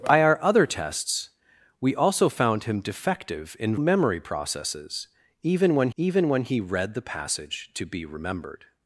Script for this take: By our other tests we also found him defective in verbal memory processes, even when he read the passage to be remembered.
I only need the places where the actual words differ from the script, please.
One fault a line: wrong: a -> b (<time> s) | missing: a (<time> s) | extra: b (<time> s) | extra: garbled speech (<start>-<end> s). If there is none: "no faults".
missing: verbal (3.8 s)
extra: even when (6.0 s)